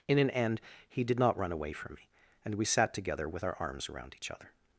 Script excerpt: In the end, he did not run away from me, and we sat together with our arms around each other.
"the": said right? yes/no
no